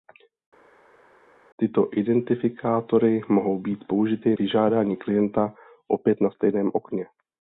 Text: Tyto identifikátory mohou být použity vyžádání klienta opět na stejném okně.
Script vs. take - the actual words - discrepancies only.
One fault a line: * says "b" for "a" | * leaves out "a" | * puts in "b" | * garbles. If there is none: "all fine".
all fine